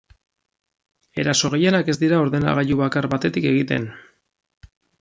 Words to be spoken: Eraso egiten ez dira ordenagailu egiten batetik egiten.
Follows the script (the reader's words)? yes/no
no